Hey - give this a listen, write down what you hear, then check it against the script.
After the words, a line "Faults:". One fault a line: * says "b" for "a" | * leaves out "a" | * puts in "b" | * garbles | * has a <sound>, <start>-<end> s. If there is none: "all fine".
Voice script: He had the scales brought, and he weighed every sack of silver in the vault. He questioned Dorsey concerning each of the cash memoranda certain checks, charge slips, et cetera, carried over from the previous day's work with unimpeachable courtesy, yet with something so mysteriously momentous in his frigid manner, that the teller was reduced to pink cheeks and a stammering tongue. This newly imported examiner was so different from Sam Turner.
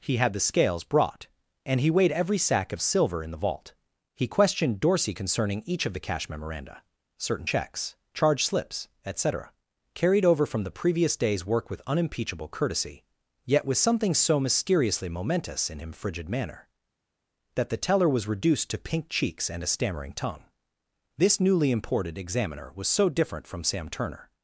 He had the scales brought, and he weighed every sack of silver in the vault. He questioned Dorsey concerning each of the cash memoranda certain checks, charge slips, et cetera, carried over from the previous day's work with unimpeachable courtesy, yet with something so mysteriously momentous in him frigid manner, that the teller was reduced to pink cheeks and a stammering tongue. This newly imported examiner was so different from Sam Turner.
Faults:
* says "him" for "his"